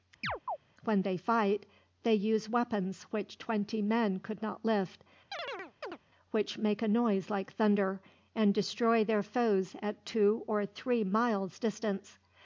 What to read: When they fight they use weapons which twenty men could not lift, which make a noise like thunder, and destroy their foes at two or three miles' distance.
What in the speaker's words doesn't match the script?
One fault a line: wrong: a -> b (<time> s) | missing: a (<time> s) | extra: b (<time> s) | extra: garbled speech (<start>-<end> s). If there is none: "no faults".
no faults